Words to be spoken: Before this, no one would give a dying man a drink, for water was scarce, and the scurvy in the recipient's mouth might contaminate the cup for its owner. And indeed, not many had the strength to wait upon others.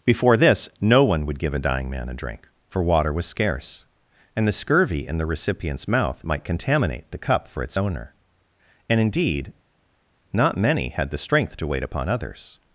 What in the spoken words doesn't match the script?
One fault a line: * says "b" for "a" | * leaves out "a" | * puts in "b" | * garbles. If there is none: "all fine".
all fine